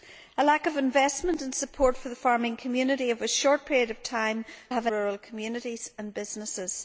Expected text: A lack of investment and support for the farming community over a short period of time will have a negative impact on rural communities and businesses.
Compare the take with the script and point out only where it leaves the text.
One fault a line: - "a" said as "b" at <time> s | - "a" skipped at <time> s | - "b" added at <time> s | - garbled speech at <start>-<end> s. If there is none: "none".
- "will" skipped at 4.5 s
- "negative impact on" skipped at 4.9 s